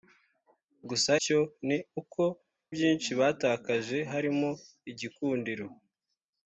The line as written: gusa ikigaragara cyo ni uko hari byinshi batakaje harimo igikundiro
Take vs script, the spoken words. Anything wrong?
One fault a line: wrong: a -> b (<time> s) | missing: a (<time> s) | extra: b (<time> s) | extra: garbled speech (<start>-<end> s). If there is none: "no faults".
missing: ikigaragara (1.1 s)
missing: hari (2.2 s)